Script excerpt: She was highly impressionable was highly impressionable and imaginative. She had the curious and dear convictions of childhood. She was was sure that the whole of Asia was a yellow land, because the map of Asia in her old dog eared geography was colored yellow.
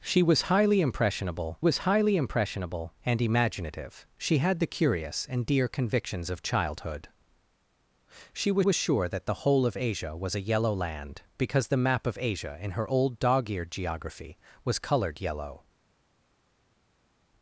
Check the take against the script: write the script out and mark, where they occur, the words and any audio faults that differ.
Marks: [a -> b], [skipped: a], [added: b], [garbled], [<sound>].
She was highly impressionable was highly impressionable and imaginative. She had the curious and dear convictions of childhood. She was was sure that the whole of Asia was a yellow land, because the map of Asia in her old dog eared geography was colored yellow.